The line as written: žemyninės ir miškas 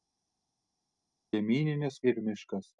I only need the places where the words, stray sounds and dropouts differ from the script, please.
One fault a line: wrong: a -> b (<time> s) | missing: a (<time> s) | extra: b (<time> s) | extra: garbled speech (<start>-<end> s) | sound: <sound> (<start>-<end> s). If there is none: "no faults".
no faults